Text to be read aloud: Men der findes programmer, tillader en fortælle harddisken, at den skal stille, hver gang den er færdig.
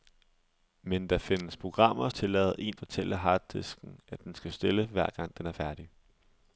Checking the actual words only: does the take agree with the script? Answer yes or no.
yes